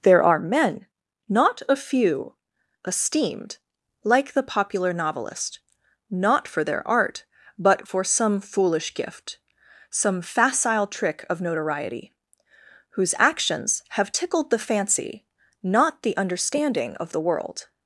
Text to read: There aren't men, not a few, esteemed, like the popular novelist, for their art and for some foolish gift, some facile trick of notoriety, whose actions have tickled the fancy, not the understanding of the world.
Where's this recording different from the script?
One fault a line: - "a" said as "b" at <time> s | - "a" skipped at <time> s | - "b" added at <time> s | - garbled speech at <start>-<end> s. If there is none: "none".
- "aren't" said as "are" at 0.2 s
- "not" added at 6.1 s
- "and" said as "but" at 7.6 s